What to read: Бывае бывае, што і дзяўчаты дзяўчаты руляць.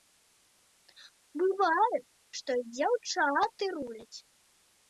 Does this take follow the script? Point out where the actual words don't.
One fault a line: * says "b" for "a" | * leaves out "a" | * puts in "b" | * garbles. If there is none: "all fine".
* leaves out "бывае"
* leaves out "дзяўчаты"